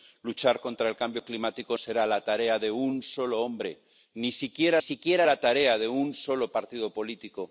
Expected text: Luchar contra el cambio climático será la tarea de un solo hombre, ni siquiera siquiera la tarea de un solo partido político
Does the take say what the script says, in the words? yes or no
yes